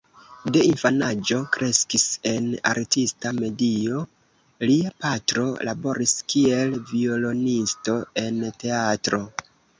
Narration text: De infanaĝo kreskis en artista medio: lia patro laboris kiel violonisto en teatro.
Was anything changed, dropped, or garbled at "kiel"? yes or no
no